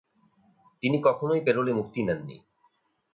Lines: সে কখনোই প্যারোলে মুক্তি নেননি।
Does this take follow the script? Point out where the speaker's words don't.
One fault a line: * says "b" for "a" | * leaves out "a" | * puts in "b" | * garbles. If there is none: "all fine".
* says "তিনি" for "সে"